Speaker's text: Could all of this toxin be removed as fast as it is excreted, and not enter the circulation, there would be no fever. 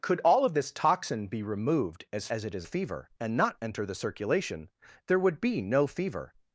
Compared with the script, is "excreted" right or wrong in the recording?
wrong